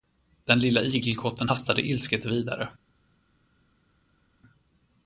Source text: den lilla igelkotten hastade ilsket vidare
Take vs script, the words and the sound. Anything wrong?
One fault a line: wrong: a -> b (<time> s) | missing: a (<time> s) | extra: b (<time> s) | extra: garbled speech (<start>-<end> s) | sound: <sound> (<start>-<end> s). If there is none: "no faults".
no faults